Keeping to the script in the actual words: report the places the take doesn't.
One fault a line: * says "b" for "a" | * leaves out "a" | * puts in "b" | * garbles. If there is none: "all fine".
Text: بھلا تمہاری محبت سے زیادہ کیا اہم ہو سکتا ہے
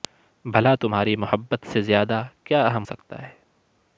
* leaves out "ہو"